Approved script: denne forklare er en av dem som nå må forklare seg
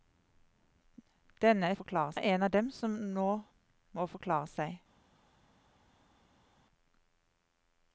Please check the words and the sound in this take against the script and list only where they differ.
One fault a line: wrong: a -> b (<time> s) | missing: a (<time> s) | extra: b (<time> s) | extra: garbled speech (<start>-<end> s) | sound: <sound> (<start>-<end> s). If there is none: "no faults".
no faults